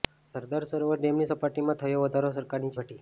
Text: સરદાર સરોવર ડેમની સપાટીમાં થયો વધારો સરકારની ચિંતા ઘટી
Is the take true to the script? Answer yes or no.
no